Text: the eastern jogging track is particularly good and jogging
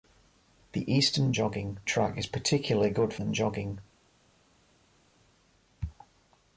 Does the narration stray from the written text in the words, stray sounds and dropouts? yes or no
no